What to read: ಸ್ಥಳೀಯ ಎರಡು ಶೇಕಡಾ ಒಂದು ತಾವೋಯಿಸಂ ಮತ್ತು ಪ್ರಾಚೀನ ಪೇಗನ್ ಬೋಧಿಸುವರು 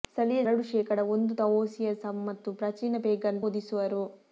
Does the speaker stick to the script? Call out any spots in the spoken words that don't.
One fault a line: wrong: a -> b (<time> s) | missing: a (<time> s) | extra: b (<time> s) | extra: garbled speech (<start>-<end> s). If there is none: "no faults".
no faults